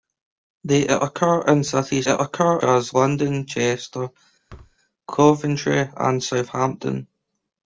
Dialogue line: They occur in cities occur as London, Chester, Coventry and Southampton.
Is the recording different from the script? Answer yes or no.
no